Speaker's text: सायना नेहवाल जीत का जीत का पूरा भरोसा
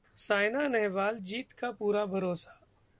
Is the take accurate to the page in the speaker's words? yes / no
no